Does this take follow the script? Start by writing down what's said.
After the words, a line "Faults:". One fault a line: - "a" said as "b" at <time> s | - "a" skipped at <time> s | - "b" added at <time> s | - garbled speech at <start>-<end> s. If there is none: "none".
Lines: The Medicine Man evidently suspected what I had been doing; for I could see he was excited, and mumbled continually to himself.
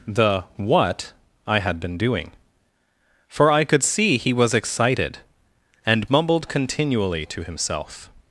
The what I had been doing; for I could see he was excited, and mumbled continually to himself.
Faults:
- "Medicine Man evidently suspected" skipped at 0.5 s